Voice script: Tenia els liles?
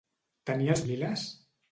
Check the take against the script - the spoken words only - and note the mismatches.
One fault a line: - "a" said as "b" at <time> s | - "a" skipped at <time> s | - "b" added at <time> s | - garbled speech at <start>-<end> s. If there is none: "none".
none